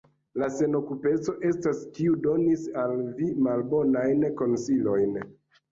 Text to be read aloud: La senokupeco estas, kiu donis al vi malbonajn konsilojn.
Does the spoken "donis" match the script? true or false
true